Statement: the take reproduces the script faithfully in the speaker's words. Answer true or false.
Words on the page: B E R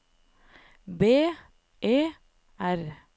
true